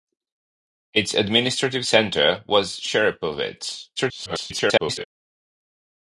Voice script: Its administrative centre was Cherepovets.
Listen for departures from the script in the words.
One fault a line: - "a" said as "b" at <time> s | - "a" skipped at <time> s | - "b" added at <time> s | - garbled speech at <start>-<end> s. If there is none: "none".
- garbled speech at 4.0-5.0 s